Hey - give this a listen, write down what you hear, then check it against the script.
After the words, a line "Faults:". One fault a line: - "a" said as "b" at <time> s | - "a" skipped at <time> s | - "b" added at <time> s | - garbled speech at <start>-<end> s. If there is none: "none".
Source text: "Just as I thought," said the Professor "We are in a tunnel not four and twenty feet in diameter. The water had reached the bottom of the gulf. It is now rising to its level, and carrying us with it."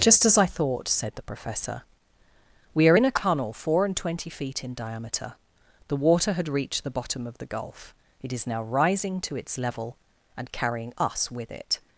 "Just as I thought," said the Professor "We are in a tunnel four and twenty feet in diameter. The water had reached the bottom of the gulf. It is now rising to its level, and carrying us with it."
Faults:
- "not" skipped at 3.5 s